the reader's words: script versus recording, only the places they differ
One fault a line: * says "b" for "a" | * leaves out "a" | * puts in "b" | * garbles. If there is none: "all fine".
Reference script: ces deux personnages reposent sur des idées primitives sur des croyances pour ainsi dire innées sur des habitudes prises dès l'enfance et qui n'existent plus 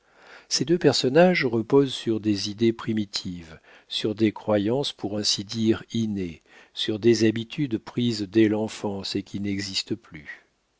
all fine